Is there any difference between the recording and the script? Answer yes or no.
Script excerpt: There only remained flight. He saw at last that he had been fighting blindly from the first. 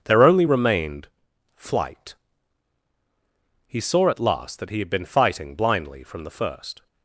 no